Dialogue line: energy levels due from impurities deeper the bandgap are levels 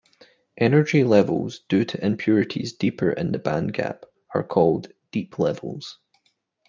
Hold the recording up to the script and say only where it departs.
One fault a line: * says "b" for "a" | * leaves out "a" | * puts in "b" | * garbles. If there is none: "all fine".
* says "to" for "from"
* puts in "in"
* puts in "called deep"